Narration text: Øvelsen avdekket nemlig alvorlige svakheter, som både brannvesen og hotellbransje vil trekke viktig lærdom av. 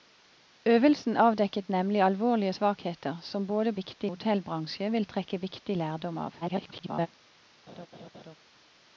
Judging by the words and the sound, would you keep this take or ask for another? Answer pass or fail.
fail